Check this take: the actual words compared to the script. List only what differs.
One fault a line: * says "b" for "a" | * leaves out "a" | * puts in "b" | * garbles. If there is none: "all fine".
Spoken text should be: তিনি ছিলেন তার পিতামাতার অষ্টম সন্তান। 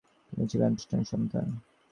* leaves out "তার পিতামাতার"